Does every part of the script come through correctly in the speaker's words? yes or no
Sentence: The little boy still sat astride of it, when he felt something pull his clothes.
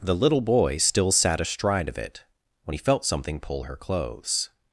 no